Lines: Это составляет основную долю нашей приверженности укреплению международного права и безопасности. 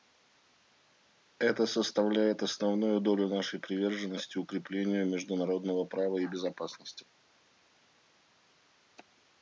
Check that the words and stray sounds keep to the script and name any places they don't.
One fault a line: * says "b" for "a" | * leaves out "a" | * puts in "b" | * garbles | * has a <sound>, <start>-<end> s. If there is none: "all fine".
all fine